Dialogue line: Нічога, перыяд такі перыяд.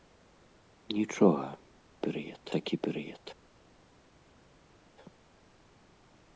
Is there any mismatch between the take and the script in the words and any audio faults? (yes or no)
no